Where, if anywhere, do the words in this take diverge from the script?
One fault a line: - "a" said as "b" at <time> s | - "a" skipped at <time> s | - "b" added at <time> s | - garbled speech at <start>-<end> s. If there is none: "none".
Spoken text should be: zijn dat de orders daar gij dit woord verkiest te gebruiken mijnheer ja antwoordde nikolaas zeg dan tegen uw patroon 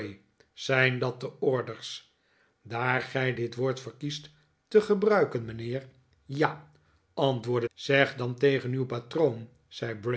- "nikolaas" skipped at 7.7 s